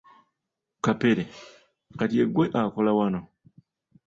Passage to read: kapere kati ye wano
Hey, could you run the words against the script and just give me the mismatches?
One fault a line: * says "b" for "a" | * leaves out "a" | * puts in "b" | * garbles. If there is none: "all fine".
* puts in "ggwe akola"